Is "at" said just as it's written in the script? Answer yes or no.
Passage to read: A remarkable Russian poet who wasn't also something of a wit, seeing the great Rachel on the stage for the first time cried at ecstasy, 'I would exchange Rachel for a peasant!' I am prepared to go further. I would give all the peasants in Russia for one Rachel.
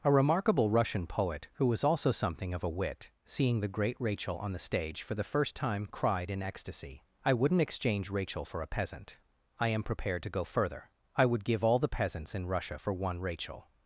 no